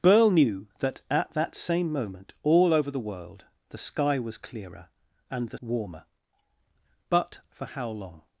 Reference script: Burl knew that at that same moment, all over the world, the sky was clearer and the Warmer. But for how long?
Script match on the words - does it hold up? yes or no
yes